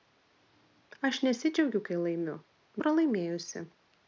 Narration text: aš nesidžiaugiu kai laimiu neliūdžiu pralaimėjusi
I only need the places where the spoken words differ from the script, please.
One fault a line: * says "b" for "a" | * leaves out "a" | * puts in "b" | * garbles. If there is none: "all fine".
* leaves out "neliūdžiu"